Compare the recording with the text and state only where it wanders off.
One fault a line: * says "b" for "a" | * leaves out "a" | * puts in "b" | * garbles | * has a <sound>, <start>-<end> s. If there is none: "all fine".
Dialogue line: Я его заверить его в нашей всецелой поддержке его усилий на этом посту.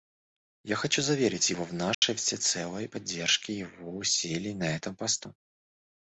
* says "хочу" for "его"
* has a dropout, 1.9-2.0 s